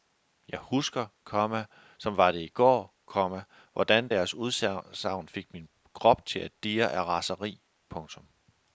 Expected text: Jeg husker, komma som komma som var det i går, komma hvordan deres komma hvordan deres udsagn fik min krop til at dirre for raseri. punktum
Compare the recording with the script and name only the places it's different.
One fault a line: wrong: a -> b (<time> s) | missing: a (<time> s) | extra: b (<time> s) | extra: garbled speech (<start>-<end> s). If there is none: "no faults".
missing: komma som (2.2 s)
missing: komma hvordan deres (4.3 s)
wrong: for -> af (6.9 s)